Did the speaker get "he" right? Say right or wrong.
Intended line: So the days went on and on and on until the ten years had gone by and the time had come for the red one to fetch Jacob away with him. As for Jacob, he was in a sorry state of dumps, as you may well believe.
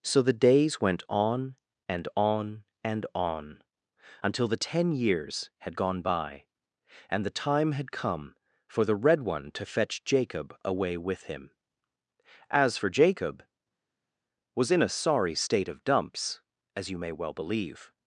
wrong